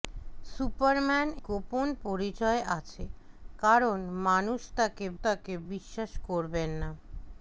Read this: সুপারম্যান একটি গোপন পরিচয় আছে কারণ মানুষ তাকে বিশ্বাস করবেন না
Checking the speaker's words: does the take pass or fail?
fail